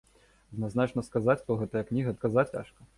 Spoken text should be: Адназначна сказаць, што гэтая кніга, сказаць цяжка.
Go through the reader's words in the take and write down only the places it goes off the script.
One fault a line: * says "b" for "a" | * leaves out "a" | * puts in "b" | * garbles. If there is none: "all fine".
all fine